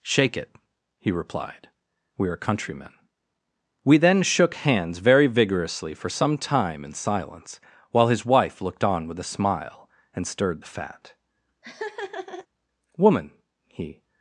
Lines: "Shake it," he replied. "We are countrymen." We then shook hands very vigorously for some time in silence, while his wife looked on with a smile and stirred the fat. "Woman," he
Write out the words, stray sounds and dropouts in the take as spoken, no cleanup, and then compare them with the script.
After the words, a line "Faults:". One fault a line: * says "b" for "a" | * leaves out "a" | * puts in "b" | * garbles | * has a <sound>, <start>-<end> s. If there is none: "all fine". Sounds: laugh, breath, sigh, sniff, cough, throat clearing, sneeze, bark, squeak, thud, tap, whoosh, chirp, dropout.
"Shake it," he replied. "We are countrymen." We then shook hands very vigorously for some time in silence, while his wife looked on with a smile and stirred the fat. "Woman," he
Faults:
* has a laugh, 11.6-12.5 s